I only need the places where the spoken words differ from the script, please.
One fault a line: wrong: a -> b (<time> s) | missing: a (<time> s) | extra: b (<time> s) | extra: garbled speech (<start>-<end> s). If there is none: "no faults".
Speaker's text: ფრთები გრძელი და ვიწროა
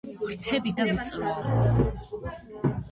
missing: გრძელი (0.7 s)